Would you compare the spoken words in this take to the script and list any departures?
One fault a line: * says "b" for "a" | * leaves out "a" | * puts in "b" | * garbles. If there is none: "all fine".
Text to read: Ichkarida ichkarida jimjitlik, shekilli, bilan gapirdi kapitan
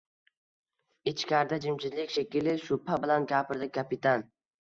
* leaves out "ichkarida"
* puts in "shubha"